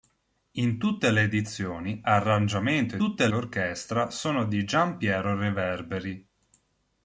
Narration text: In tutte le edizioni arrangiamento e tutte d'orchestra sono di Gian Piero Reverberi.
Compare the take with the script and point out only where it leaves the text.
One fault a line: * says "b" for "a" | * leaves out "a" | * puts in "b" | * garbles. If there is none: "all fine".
all fine